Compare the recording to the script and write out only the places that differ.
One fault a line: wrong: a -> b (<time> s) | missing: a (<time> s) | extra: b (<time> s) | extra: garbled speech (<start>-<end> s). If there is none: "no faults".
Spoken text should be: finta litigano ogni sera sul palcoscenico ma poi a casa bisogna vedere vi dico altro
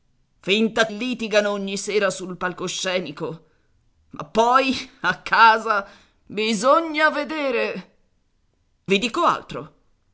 no faults